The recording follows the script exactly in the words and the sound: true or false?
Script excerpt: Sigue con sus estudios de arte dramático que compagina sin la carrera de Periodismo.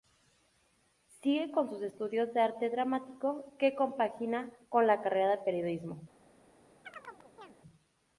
false